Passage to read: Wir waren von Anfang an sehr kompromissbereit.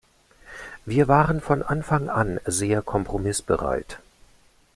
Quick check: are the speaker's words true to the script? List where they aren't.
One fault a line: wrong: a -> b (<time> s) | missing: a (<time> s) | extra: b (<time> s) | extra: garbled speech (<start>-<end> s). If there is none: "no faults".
no faults